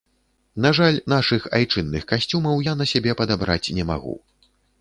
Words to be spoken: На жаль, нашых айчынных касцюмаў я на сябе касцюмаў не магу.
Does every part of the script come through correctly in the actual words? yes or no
no